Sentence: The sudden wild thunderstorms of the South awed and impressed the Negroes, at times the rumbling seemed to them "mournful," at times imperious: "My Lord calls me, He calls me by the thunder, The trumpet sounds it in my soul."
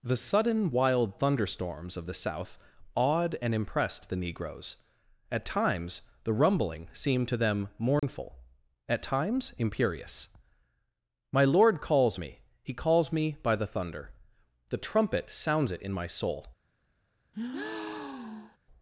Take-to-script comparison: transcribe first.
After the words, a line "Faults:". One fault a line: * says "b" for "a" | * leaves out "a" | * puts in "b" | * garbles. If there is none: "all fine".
The sudden wild thunderstorms of the South awed and impressed the Negroes, at times the rumbling seemed to them "mournful," at times imperious: "My Lord calls me, He calls me by the thunder, The trumpet sounds it in my soul."
Faults:
all fine